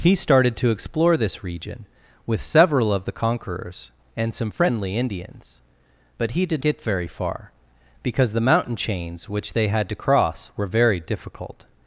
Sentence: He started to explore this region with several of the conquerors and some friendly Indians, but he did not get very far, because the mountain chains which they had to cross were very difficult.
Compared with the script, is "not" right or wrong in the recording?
wrong